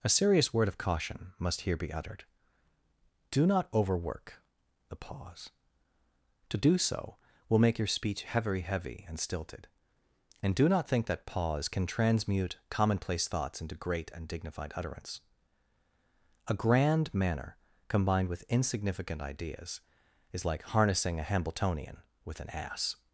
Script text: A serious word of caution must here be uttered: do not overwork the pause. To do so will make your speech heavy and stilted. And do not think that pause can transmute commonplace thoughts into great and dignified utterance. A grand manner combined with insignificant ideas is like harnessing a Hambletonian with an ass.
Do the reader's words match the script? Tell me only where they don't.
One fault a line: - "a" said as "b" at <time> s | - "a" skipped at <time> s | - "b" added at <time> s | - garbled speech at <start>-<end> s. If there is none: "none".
- "heavy" added at 8.6 s